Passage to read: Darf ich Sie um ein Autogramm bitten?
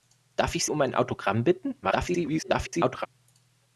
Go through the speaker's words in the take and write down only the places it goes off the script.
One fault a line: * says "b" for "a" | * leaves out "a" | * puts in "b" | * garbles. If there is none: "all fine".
* leaves out "Sie"
* garbles